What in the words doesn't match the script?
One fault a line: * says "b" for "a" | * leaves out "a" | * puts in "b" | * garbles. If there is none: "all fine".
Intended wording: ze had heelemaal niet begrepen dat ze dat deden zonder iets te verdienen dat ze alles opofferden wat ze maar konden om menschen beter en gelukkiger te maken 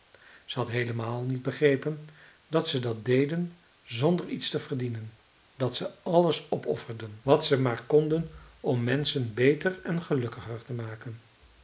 all fine